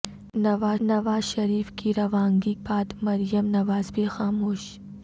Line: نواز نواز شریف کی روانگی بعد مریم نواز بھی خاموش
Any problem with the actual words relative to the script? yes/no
no